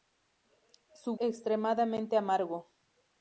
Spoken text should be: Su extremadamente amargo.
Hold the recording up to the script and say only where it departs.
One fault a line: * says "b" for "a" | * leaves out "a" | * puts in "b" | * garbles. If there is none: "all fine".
all fine